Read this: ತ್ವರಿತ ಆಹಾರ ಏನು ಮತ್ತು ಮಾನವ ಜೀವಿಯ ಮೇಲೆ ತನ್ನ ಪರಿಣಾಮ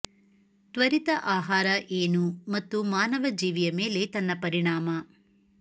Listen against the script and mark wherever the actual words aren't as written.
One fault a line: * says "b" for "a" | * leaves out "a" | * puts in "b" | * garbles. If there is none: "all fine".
all fine